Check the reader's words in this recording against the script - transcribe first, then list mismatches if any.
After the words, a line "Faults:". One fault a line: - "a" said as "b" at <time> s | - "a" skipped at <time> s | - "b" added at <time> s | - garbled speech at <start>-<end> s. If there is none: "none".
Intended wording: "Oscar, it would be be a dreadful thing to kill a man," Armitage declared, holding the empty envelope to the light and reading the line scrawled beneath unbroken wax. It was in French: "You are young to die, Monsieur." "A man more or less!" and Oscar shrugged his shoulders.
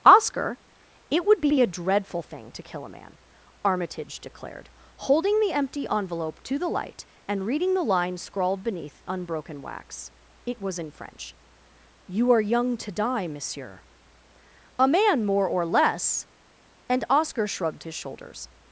"Oscar, it would be be a dreadful thing to kill a man," Armitage declared, holding the empty envelope to the light and reading the line scrawled beneath unbroken wax. It was in French: "You are young to die, Monsieur." "A man more or less!" and Oscar shrugged his shoulders.
Faults:
none